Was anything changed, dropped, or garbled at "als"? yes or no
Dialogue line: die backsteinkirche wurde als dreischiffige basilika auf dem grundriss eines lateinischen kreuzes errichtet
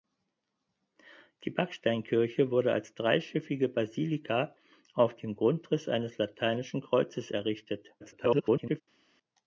no